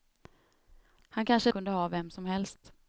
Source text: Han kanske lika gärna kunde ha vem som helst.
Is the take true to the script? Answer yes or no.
no